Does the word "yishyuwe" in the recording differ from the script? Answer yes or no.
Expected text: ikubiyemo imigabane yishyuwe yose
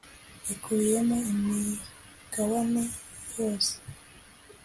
yes